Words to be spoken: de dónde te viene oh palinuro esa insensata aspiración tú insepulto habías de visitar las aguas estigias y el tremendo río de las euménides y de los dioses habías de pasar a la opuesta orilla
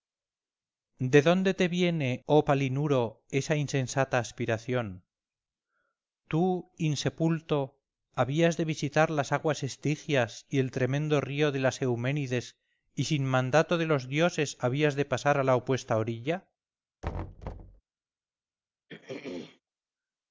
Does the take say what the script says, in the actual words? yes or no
no